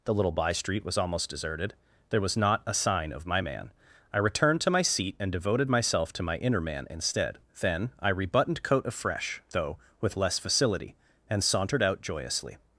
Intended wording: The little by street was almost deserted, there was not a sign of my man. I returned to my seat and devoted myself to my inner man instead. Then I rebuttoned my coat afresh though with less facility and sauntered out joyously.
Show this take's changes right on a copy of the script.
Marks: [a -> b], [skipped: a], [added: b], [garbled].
The little by street was almost deserted, there was not a sign of my man. I returned to my seat and devoted myself to my inner man instead. Then I rebuttoned [skipped: my] coat afresh though with less facility and sauntered out joyously.